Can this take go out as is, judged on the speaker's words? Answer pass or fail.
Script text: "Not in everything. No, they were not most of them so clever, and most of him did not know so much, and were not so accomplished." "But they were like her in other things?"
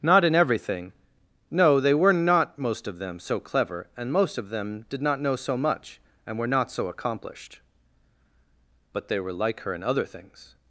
fail